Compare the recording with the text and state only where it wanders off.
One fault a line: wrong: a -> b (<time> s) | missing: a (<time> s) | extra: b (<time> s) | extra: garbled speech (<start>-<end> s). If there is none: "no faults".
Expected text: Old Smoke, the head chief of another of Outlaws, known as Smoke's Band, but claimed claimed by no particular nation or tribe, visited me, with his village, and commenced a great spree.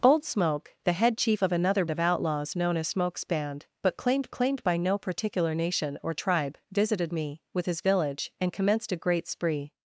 no faults